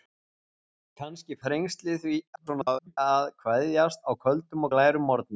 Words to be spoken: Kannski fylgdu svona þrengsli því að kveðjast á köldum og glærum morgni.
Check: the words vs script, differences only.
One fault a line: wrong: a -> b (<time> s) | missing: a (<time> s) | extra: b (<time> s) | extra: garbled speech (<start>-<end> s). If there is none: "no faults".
missing: fylgdu svona (1.4 s)
extra: garbled speech (2.4-3.0 s)